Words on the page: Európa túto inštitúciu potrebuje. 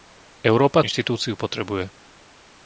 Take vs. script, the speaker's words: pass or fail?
fail